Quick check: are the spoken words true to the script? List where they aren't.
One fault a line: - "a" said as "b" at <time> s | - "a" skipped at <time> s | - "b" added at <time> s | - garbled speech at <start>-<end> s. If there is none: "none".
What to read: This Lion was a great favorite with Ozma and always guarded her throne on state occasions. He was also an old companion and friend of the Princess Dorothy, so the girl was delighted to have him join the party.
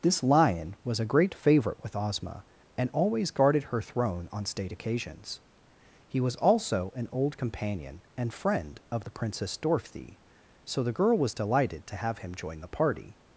none